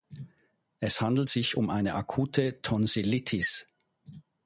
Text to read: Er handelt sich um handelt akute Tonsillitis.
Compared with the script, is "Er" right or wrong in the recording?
wrong